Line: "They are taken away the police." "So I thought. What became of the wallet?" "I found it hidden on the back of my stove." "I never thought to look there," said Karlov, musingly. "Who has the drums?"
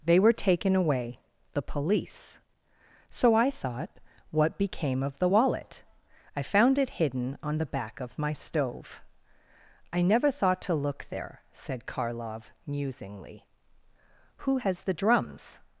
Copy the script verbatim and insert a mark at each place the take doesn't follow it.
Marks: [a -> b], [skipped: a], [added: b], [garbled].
"They [are -> were] taken away the police." "So I thought. What became of the wallet?" "I found it hidden on the back of my stove." "I never thought to look there," said Karlov, musingly. "Who has the drums?"